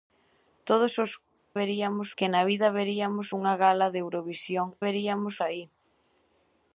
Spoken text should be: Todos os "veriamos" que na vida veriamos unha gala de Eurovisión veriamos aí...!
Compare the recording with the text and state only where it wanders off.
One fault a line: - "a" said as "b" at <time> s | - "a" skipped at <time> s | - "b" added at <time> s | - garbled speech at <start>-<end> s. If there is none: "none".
none